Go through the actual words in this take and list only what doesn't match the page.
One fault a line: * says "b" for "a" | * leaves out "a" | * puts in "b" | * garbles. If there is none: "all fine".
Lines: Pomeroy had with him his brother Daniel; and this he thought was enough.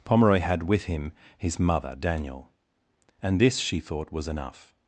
* says "mother" for "brother"
* says "she" for "he"